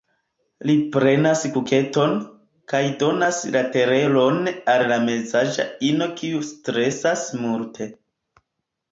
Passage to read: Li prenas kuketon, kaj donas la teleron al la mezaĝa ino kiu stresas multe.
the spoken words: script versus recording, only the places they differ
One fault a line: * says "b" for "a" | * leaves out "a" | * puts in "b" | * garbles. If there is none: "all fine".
all fine